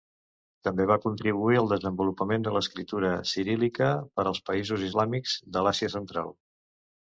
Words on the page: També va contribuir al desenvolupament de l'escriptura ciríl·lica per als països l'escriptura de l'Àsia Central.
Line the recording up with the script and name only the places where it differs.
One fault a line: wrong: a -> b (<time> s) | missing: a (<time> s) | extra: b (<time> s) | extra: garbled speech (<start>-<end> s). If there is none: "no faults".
wrong: l'escriptura -> islàmics (4.9 s)